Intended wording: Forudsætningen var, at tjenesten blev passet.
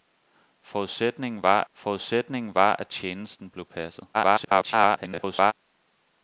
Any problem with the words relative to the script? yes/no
yes